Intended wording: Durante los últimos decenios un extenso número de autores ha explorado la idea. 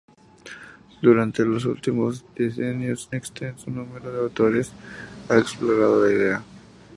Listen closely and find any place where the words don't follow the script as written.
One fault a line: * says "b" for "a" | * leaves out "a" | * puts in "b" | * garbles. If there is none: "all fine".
* leaves out "un"